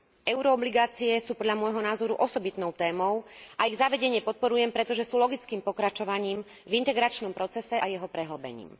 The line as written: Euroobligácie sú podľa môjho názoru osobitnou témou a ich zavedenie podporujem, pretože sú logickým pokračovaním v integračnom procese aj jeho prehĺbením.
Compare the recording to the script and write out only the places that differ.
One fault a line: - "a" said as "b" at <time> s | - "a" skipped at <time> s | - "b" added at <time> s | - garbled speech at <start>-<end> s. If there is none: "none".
none